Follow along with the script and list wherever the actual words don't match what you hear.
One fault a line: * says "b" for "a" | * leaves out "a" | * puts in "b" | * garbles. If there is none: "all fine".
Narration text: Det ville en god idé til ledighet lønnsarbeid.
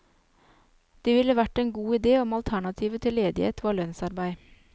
* puts in "vært"
* puts in "om alternativet"
* puts in "var"